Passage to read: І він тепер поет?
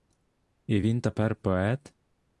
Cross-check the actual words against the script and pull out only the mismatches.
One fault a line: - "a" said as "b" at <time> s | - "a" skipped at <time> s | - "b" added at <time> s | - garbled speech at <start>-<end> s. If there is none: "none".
none